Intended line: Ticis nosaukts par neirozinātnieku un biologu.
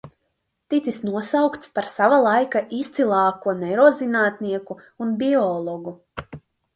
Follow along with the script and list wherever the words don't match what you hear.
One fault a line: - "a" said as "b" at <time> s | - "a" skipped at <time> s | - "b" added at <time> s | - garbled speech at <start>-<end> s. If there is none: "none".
- "sava laika izcilāko" added at 1.9 s